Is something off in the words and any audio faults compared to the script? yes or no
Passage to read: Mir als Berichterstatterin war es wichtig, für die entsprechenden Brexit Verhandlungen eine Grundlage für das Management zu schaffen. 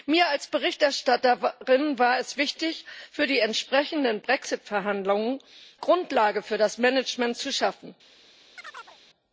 yes